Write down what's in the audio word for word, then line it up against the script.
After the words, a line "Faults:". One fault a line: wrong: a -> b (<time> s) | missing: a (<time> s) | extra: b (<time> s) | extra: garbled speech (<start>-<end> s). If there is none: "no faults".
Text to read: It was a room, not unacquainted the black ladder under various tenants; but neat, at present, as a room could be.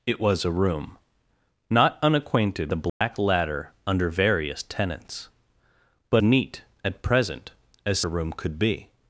It was a room, not unacquainted the black ladder under various tenants; but neat, at present, as a room could be.
Faults:
no faults